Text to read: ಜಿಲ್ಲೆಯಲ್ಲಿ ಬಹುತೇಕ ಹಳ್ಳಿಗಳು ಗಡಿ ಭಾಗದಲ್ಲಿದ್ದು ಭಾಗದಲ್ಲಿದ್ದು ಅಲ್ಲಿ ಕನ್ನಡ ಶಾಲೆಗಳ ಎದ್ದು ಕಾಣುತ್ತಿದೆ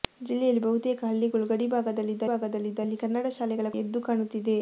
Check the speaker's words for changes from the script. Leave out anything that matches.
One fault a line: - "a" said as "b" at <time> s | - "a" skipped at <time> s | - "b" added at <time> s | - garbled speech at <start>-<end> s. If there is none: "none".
none